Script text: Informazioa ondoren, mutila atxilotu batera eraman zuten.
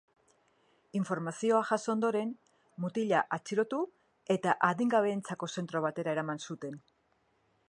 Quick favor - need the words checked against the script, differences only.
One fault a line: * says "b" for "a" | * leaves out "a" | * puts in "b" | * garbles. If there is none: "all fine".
* puts in "jaso"
* puts in "eta adingabeentzako zentro"